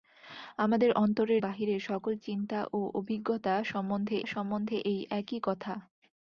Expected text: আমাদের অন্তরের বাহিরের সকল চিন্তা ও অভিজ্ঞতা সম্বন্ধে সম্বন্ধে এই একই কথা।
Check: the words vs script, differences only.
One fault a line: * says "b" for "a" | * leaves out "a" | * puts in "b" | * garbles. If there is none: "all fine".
all fine